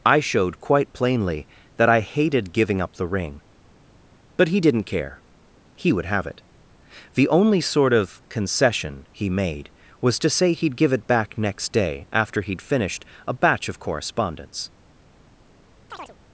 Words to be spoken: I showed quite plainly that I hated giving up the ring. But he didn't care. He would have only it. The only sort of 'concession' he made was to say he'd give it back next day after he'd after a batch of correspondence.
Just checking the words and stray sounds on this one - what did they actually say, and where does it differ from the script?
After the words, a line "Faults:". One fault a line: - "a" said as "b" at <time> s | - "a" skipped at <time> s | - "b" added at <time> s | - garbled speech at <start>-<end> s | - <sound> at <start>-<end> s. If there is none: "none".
I showed quite plainly that I hated giving up the ring. But he didn't care. He would have it. The only sort of 'concession' he made was to say he'd give it back next day after he'd finished a batch of correspondence.
Faults:
- "only" skipped at 6.2 s
- "after" said as "finished" at 12.6 s
- chirp at 15.9-16.2 s